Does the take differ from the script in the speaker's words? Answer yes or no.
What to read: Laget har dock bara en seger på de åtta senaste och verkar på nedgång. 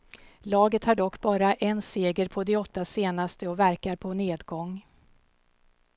no